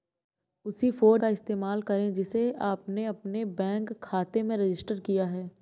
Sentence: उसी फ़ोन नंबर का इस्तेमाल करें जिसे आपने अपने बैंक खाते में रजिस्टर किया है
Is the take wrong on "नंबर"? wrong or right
wrong